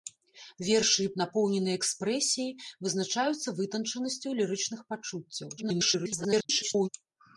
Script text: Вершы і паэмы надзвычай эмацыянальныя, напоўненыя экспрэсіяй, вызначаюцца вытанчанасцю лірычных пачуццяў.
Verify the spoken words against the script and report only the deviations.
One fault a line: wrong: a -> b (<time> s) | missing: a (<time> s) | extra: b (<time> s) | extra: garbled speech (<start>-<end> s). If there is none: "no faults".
missing: паэмы надзвычай эмацыянальныя (1.1 s)
extra: garbled speech (5.6-6.9 s)